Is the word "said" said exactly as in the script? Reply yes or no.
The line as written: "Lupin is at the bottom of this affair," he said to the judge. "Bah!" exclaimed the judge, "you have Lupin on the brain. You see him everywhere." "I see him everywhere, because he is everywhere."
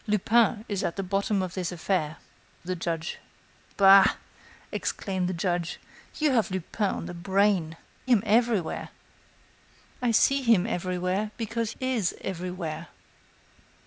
no